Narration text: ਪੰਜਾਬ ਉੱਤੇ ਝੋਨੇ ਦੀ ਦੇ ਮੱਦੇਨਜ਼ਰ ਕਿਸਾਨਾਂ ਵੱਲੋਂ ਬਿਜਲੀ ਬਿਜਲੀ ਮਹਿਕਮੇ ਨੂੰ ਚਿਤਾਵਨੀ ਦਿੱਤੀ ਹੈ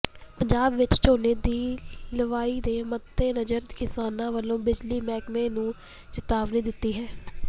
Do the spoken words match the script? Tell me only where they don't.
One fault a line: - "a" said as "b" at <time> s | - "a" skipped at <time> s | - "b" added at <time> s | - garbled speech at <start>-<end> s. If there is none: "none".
- "ਉੱਤੇ" said as "ਵਿੱਚ" at 0.8 s
- "ਲਵਾਈ" added at 2.1 s
- "ਬਿਜਲੀ" skipped at 5.0 s